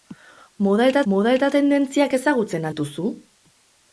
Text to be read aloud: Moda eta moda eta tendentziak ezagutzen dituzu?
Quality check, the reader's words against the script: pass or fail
pass